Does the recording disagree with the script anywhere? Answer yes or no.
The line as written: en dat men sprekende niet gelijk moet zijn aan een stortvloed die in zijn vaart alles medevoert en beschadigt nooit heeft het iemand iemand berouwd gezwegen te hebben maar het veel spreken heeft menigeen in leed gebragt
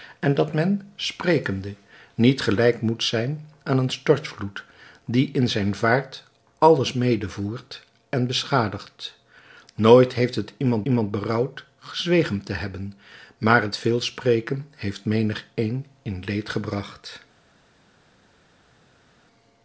no